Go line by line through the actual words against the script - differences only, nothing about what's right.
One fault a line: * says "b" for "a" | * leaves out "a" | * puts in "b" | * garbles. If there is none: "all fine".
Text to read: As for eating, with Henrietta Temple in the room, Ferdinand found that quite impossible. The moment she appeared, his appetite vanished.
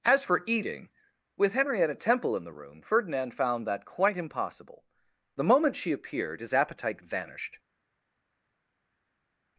all fine